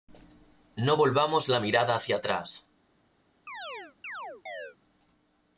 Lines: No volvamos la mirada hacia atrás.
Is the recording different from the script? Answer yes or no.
no